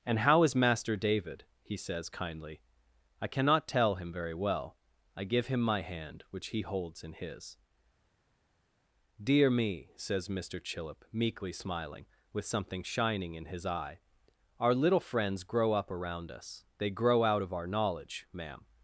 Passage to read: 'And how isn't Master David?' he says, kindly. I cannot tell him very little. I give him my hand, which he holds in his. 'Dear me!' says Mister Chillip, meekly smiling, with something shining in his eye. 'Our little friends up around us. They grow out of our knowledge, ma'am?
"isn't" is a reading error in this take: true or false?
true